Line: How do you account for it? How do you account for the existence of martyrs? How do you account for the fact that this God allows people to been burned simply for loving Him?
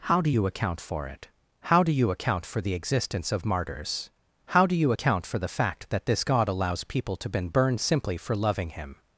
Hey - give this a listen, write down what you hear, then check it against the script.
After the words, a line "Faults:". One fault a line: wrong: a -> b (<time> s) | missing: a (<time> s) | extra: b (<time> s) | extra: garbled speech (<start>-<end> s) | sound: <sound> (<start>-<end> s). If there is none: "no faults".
How do you account for it? How do you account for the existence of martyrs? How do you account for the fact that this God allows people to been burned simply for loving Him?
Faults:
no faults